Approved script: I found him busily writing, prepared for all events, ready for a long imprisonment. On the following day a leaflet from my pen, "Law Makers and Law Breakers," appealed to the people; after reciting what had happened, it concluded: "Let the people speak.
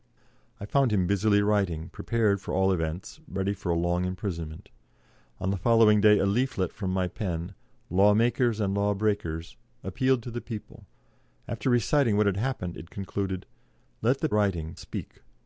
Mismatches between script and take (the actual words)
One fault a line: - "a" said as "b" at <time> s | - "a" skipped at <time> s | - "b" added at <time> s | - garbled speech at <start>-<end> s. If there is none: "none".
- "people" said as "writing" at 14.3 s